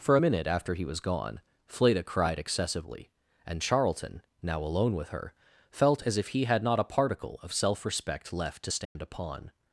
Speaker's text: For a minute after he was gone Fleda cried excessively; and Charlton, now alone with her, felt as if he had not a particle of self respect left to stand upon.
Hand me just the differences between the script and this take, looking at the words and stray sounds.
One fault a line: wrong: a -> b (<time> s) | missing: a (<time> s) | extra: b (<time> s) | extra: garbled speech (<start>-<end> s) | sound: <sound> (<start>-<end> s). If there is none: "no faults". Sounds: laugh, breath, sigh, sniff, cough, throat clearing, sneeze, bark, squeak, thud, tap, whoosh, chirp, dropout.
sound: dropout (8.8-9.0 s)